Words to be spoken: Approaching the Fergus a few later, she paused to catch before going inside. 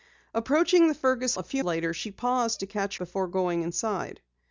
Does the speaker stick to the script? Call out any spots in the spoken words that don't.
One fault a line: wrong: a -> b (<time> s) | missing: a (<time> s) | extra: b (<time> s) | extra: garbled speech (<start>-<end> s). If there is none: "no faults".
no faults